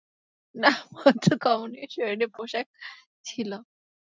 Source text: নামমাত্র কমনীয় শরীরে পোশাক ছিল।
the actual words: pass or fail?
pass